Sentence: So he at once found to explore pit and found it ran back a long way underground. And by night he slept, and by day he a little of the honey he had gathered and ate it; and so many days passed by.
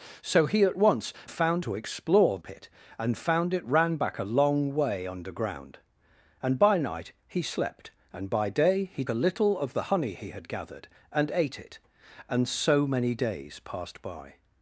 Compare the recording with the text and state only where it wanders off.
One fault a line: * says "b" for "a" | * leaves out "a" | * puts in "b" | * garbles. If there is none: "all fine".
all fine